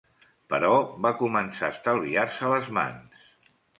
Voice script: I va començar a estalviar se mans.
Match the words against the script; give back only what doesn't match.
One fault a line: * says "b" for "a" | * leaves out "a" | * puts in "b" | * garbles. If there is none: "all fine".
* says "Però" for "I"
* puts in "les"